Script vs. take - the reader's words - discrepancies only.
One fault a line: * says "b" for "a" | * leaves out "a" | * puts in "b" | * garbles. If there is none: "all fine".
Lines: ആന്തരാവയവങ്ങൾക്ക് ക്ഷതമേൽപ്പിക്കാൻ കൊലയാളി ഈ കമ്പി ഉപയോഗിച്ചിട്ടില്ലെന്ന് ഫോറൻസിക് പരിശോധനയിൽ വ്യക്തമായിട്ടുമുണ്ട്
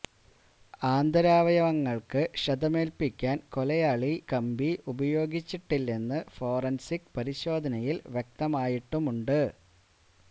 * leaves out "ഈ"